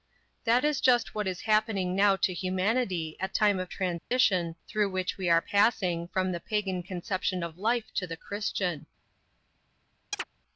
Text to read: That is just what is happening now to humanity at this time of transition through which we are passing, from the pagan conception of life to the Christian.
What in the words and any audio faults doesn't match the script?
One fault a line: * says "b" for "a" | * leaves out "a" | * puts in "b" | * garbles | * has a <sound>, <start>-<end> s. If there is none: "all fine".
* leaves out "this"
* has a dropout, 4.0-4.1 s
* has a chirp, 10.1-10.2 s